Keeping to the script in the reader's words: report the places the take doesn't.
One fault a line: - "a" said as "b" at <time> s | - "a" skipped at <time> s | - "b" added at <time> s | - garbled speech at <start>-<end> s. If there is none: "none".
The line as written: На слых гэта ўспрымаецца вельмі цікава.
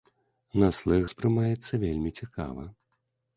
- "гэта" skipped at 1.0 s